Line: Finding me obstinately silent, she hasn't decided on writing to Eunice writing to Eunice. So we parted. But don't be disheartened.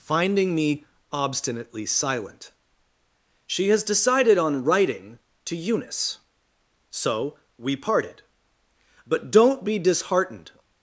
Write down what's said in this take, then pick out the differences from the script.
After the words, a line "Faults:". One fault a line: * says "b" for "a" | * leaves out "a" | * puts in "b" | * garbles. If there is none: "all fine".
Finding me obstinately silent, she has decided on writing to Eunice. So we parted. But don't be disheartened.
Faults:
* says "has" for "hasn't"
* leaves out "writing to Eunice"